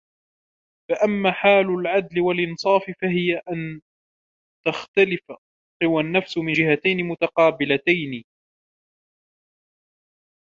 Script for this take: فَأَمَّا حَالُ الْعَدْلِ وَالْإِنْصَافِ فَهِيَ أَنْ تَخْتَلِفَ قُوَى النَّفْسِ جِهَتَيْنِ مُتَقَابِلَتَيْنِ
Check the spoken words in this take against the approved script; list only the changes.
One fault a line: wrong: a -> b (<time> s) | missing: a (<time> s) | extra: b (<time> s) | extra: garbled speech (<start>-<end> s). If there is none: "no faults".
extra: مِنْ (6.4 s)